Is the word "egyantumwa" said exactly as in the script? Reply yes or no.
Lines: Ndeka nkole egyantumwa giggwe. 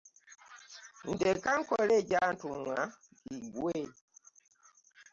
yes